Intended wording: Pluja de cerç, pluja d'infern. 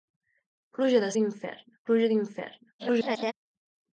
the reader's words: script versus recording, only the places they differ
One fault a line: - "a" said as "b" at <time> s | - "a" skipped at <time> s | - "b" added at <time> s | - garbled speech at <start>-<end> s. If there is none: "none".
- "cerç" said as "d'infern" at 1.2 s
- garbled speech at 2.8-3.3 s